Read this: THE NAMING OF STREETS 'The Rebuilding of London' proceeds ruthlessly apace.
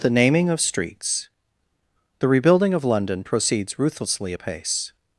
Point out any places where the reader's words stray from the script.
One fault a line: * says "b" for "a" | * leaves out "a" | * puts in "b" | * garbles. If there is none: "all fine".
all fine